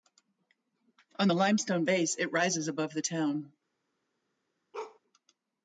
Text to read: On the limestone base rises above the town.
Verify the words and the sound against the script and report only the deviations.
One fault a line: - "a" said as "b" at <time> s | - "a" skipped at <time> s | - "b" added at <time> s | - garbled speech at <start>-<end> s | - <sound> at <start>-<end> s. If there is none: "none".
- "it" added at 2.2 s
- bark at 4.7-5.0 s